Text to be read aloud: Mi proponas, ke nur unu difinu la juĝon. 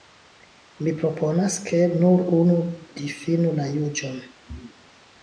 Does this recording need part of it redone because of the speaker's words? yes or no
no